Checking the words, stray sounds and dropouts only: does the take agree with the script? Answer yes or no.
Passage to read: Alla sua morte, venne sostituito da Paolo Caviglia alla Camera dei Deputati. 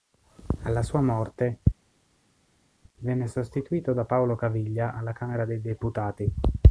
yes